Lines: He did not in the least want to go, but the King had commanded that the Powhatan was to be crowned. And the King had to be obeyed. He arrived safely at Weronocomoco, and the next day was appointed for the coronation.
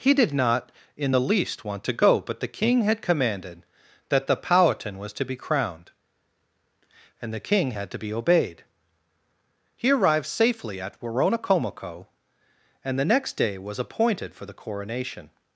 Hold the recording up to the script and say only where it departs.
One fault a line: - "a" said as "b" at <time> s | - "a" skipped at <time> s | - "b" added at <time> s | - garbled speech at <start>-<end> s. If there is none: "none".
none